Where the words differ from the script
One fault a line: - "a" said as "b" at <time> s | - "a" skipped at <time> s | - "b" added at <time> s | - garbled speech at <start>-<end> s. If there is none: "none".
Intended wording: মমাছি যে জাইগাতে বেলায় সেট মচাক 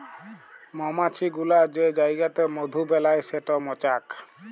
- "গুলা" added at 1.3 s
- "মধু" added at 2.5 s